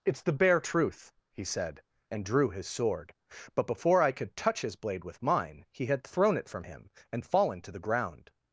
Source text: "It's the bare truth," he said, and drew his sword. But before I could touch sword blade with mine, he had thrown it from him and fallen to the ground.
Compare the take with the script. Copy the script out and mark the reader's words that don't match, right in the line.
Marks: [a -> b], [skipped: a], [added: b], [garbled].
"It's the bare truth," he said, and drew his sword. But before I could touch [sword -> his] blade with mine, he had thrown it from him and fallen to the ground.